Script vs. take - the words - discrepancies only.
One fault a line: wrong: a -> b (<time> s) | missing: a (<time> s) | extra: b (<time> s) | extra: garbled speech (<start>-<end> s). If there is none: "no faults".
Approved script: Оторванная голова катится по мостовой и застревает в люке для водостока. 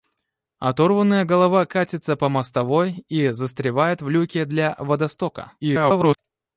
extra: garbled speech (5.6-6.2 s)